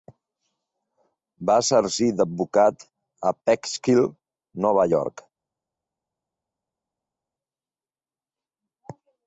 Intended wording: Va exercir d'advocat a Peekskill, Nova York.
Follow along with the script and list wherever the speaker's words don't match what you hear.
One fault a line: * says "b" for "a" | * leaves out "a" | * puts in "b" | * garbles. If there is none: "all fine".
all fine